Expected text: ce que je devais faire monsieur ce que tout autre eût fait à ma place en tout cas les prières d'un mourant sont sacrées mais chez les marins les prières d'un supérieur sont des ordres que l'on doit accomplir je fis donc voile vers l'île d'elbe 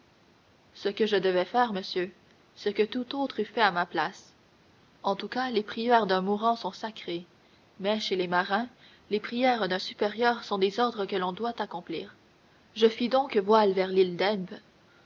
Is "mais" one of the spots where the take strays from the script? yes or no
no